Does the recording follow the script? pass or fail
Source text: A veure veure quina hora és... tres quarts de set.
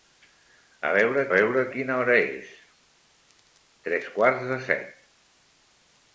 pass